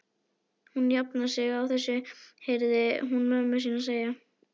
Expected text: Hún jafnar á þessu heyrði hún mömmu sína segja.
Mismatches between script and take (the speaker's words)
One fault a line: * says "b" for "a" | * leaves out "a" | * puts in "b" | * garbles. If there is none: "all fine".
* puts in "sig"